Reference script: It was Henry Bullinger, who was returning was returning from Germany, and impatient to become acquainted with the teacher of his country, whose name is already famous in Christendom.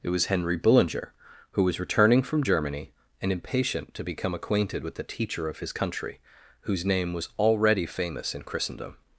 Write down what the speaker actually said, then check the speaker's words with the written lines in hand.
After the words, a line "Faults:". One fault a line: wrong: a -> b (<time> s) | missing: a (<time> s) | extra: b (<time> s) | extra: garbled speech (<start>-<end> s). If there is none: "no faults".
It was Henry Bullinger, who was returning from Germany, and impatient to become acquainted with the teacher of his country, whose name was already famous in Christendom.
Faults:
missing: was returning (2.2 s)
wrong: is -> was (7.1 s)